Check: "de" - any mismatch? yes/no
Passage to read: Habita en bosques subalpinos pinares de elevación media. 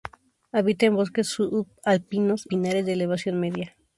no